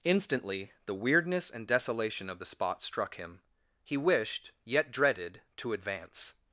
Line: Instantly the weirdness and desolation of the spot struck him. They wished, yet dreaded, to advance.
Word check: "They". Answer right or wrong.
wrong